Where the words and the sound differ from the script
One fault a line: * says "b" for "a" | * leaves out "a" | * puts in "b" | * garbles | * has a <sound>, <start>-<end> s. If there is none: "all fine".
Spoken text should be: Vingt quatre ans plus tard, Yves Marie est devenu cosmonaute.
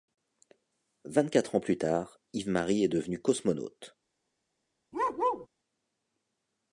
* has a bark, 4.9-5.5 s